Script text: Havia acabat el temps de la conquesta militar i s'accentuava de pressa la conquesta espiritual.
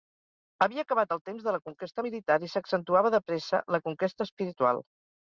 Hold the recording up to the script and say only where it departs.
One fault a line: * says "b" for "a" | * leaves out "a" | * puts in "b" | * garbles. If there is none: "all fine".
all fine